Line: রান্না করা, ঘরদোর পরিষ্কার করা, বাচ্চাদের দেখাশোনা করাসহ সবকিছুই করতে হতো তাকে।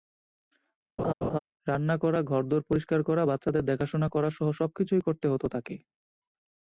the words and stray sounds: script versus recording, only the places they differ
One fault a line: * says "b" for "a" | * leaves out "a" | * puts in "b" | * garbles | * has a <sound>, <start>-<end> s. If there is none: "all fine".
* has a laugh, 1.0-1.4 s